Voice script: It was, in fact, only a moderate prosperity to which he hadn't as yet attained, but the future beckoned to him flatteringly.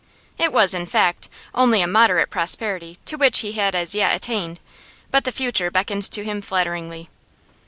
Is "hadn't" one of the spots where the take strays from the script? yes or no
yes